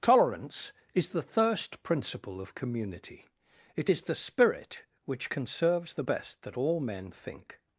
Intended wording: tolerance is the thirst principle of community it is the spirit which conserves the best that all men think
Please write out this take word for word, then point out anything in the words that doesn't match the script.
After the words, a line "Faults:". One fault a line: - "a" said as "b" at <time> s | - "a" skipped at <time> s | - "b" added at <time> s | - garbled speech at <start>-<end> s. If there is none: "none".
tolerance is the thirst principle of community it is the spirit which conserves the best that all men think
Faults:
none